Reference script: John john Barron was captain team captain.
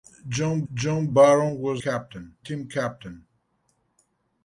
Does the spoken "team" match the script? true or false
true